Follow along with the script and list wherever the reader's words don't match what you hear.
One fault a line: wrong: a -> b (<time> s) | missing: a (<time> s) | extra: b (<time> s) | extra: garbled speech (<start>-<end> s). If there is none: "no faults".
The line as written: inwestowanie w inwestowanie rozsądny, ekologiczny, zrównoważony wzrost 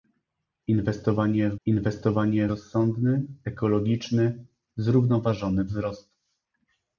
no faults